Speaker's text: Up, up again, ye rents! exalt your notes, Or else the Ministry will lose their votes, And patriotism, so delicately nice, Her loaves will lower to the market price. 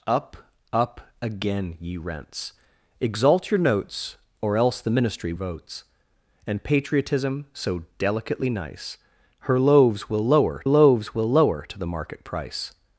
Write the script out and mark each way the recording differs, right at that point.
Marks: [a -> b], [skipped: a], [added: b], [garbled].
Up, up again, ye rents! exalt your notes, Or else the Ministry [skipped: will lose their] votes, And patriotism, so delicately nice, Her loaves will lower [added: loaves will lower] to the market price.